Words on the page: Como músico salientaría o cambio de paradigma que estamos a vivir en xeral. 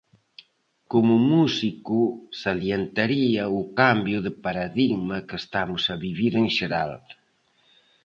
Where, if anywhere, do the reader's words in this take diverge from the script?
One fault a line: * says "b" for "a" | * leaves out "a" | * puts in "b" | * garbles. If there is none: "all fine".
all fine